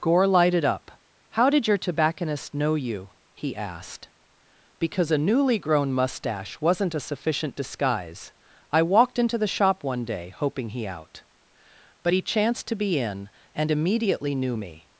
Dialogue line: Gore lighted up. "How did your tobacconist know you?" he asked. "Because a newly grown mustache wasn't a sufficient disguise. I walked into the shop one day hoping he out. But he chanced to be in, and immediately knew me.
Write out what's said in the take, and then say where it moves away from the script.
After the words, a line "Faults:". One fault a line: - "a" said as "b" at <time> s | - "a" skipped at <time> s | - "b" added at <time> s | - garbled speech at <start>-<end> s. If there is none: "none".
Gore lighted up. "How did your tobacconist know you?" he asked. "Because a newly grown mustache wasn't a sufficient disguise. I walked into the shop one day hoping he out. But he chanced to be in, and immediately knew me.
Faults:
none